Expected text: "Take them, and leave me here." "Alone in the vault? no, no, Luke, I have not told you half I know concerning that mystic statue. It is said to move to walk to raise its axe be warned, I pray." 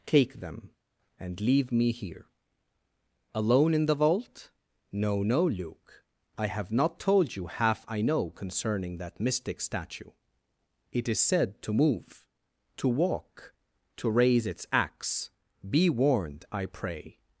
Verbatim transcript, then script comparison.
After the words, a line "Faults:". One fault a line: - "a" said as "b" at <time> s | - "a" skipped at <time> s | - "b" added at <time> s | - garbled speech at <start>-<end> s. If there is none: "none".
"Take them, and leave me here." "Alone in the vault? no, no, Luke, I have not told you half I know concerning that mystic statue. It is said to move to walk to raise its axe be warned, I pray."
Faults:
none